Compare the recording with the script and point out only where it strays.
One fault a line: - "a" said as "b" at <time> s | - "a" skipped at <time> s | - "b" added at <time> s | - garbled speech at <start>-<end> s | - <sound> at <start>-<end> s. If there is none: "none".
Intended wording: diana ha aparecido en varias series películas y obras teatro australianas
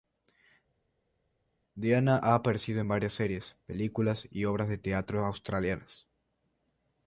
- "de" added at 4.7 s